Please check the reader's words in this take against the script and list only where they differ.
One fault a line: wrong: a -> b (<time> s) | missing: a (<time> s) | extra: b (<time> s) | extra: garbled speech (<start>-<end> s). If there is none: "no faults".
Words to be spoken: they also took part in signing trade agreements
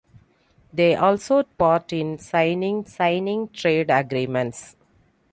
missing: took (1.4 s)
extra: signing (2.8 s)